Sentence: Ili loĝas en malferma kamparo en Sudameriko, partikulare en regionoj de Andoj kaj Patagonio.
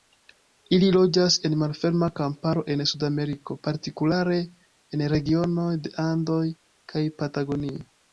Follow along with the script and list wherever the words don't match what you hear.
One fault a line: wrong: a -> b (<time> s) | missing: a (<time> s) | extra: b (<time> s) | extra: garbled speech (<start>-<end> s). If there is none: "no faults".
no faults